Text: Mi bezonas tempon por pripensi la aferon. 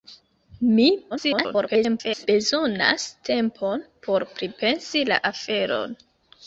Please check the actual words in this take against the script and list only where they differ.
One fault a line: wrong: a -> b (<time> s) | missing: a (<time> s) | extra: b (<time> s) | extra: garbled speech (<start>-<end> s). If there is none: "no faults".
extra: garbled speech (1.1-2.3 s)